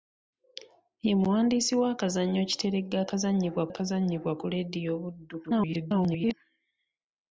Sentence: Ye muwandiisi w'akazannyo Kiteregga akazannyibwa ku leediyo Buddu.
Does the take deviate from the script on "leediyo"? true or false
false